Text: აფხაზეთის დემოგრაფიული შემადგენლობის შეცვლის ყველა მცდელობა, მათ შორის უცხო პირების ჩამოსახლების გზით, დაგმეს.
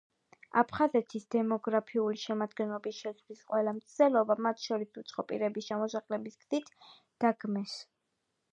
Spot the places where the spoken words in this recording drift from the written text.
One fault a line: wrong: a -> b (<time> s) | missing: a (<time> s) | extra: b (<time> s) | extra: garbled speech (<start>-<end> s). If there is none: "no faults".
no faults